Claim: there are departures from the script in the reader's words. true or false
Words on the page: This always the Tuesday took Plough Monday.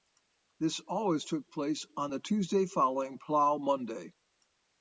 true